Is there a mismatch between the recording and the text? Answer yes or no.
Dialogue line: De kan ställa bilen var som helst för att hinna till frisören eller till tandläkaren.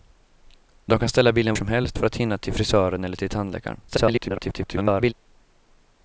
yes